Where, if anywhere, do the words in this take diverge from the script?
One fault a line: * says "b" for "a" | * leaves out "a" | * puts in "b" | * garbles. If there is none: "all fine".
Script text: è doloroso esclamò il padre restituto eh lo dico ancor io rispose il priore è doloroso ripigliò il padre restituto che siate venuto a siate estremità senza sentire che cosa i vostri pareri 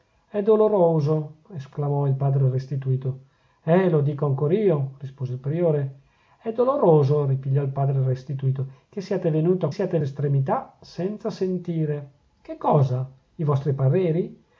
all fine